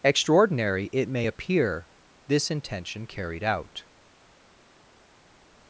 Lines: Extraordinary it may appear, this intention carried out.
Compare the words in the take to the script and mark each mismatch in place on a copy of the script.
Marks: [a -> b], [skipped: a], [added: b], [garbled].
Extraordinary it may appear, this intention carried out.